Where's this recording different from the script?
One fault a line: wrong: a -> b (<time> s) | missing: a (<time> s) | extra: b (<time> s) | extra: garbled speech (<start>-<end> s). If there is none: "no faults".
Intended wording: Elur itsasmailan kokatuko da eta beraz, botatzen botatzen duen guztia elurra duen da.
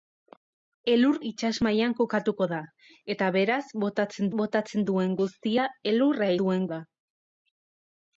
no faults